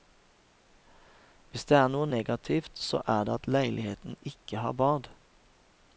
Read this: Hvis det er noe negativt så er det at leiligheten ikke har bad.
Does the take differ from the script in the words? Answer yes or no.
no